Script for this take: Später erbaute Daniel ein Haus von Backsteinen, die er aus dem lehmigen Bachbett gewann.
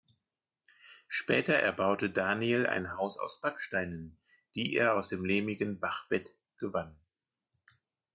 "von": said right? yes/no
no